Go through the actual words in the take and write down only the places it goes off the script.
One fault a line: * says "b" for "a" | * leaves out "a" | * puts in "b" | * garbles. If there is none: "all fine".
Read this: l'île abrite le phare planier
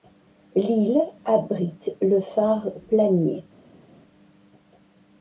all fine